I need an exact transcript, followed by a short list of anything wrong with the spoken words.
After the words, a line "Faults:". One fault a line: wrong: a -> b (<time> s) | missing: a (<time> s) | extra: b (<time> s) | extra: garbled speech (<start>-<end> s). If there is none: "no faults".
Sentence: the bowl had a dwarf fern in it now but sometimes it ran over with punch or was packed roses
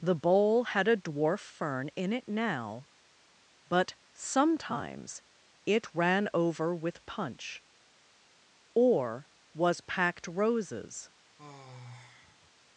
the bowl had a dwarf fern in it now but sometimes it ran over with punch or was packed roses
Faults:
no faults